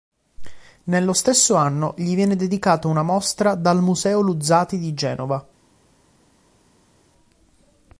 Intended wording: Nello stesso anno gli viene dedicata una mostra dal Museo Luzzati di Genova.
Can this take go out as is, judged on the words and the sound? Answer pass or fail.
pass